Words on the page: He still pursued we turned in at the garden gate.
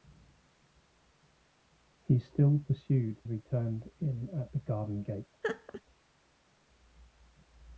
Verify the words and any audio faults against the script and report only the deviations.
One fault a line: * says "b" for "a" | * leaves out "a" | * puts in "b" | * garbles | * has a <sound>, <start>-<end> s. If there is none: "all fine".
* has a laugh, 5.4-5.8 s